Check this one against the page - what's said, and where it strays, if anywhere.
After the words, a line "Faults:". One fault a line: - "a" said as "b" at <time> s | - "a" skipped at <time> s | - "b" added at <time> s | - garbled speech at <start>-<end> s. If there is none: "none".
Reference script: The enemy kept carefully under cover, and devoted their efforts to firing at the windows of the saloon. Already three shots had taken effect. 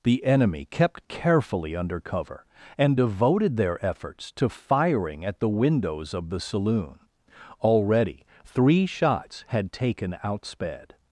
The enemy kept carefully under cover, and devoted their efforts to firing at the windows of the saloon. Already three shots had taken outsped.
Faults:
- "effect" said as "outsped" at 10.2 s